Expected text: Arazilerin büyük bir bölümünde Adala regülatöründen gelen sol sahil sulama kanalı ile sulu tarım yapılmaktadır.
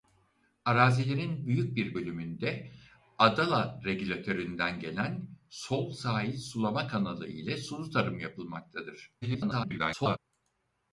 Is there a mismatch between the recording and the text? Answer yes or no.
yes